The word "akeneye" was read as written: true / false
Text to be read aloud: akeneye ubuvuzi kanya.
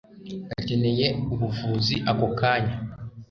true